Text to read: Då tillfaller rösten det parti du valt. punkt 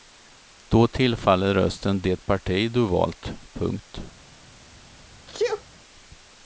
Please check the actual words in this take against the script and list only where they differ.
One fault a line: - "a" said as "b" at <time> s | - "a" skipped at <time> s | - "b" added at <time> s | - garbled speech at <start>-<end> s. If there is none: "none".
none